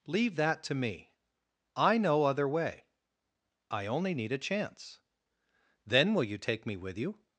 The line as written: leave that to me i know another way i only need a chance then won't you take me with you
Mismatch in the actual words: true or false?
true